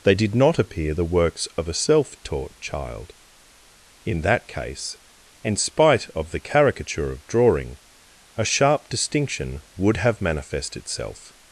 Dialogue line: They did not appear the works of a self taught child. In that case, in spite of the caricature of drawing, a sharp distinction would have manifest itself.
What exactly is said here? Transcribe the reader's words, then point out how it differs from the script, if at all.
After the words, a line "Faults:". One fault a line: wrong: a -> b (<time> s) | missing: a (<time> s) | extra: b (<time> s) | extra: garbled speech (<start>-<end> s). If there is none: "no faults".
They did not appear the works of a self taught child. In that case, in spite of the caricature of drawing, a sharp distinction would have manifest itself.
Faults:
no faults